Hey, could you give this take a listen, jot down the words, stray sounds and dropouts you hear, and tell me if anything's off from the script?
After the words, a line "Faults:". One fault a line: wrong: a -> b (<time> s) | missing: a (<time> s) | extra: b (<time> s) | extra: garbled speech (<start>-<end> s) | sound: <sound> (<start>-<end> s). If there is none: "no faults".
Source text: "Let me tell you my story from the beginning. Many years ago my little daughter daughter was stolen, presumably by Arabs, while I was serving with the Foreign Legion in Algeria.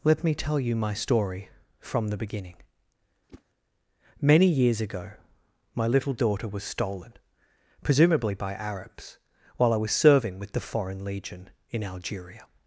"Let me tell you my story from the beginning. Many years ago my little daughter was stolen, presumably by Arabs, while I was serving with the Foreign Legion in Algeria.
Faults:
sound: whoosh (3.3-3.4 s)
missing: daughter (6.5 s)